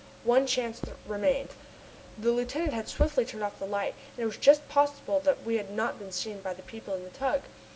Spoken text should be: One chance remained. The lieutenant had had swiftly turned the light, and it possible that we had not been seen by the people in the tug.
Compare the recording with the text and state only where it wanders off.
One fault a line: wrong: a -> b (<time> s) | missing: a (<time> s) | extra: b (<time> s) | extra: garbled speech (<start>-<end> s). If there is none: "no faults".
missing: had (2.9 s)
extra: off (3.4 s)
extra: was just (4.2 s)